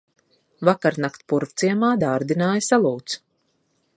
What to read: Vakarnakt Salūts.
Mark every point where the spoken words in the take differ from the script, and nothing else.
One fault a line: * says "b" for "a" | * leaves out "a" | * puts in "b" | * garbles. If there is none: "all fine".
* puts in "Purvciemā dārdināja"